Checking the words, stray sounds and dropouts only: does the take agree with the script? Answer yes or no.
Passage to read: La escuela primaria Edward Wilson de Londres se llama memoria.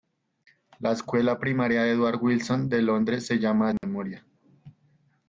no